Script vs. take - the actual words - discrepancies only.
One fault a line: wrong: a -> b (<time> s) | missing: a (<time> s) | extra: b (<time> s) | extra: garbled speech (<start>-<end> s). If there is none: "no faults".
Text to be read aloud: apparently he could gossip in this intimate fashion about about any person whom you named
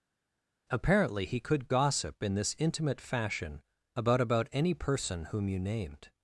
no faults